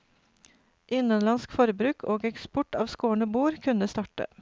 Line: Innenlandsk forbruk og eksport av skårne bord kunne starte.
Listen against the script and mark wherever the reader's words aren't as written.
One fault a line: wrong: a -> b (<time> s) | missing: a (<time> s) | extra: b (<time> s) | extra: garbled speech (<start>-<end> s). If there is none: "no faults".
no faults